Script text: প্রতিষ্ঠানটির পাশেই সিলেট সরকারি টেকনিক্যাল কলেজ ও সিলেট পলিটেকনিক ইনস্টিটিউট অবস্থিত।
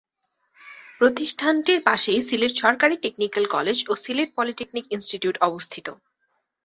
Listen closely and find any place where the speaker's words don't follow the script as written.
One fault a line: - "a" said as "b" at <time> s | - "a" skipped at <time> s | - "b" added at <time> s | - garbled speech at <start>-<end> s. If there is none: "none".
none